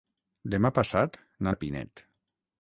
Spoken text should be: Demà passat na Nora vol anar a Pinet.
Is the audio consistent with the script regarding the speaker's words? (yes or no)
no